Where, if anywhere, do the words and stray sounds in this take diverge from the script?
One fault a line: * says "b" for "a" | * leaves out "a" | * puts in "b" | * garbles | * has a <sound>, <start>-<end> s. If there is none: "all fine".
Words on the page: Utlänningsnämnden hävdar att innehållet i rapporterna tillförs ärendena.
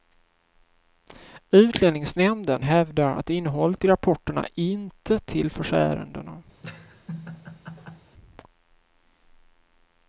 * puts in "inte"
* has a laugh, 6.6-8.1 s